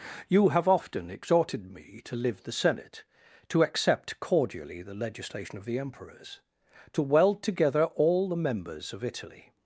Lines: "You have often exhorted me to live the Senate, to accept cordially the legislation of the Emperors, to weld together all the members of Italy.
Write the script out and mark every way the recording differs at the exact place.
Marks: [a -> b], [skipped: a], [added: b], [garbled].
"You have often exhorted me to live the Senate, to accept cordially the legislation of the Emperors, to weld together all the members of Italy.